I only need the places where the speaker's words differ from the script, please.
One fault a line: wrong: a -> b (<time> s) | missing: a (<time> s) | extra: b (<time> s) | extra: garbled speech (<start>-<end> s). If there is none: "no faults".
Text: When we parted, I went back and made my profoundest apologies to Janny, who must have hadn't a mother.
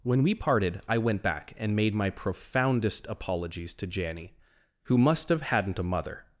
no faults